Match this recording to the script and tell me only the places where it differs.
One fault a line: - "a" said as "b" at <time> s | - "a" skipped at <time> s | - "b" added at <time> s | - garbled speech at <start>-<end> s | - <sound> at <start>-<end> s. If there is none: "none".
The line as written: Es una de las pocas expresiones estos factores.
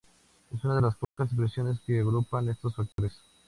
- dropout at 1.0-1.2 s
- "que agrupan" added at 1.8 s
- dropout at 2.9-3.0 s